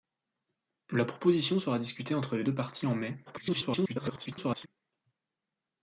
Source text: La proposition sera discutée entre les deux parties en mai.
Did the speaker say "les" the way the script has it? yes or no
yes